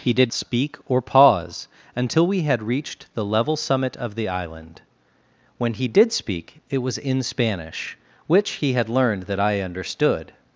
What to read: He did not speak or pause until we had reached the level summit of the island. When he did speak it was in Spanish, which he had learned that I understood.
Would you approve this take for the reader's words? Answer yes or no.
no